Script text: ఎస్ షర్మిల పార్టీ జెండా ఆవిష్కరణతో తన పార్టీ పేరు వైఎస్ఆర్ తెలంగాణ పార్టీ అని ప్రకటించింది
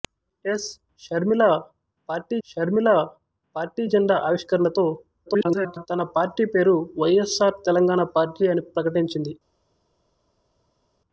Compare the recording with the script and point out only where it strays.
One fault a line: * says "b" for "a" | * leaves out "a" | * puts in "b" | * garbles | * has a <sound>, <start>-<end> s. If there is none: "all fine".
* puts in "షర్మిల పార్టీ"
* garbles